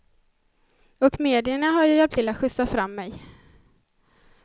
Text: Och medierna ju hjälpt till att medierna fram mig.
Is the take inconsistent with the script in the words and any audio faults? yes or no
yes